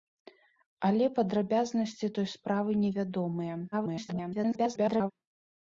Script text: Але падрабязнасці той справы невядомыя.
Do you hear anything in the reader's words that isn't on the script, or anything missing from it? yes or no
yes